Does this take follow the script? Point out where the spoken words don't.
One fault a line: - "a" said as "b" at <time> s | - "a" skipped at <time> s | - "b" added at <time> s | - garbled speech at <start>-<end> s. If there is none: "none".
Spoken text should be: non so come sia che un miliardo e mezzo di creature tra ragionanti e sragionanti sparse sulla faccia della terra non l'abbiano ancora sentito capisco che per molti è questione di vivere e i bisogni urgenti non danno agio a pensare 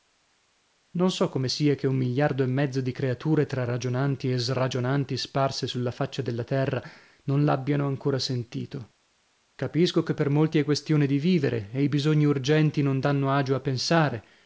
none